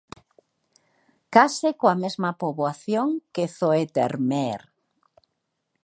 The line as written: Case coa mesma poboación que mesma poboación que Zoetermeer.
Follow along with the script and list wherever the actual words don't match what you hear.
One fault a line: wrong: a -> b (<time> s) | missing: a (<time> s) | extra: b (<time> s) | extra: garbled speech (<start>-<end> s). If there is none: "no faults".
missing: mesma poboación que (3.5 s)